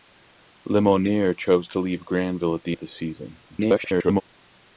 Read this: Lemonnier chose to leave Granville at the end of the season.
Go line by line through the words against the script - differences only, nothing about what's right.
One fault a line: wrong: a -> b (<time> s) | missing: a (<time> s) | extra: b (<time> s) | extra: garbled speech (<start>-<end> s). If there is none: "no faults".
missing: end (2.8 s)
extra: garbled speech (3.5-4.2 s)